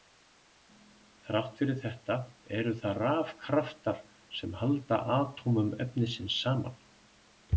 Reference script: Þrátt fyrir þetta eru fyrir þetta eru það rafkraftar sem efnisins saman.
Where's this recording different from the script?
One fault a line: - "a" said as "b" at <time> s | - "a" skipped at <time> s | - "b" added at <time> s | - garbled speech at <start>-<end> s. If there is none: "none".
- "fyrir þetta eru" skipped at 2.7 s
- "halda atómum" added at 4.6 s